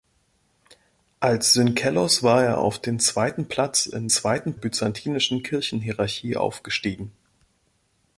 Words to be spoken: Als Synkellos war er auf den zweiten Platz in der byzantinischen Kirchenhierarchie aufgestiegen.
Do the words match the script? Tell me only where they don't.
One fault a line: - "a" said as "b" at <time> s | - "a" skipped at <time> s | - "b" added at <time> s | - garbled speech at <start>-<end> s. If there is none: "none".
- "der" said as "zweiten" at 4.1 s